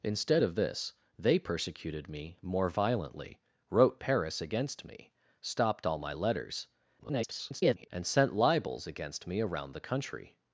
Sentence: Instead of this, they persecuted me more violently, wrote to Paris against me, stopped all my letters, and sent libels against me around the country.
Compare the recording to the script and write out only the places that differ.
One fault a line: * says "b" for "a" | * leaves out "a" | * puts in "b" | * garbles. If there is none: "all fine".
* leaves out "to"
* garbles